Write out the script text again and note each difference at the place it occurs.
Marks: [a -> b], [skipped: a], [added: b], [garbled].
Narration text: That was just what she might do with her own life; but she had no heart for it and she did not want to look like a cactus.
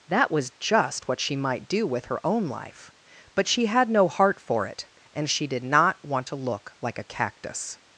That was just what she might do with her own life; but she had no heart for it and she did not want to look like a cactus.